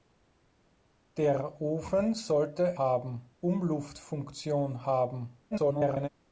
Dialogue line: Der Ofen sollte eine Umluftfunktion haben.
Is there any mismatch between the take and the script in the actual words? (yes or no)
yes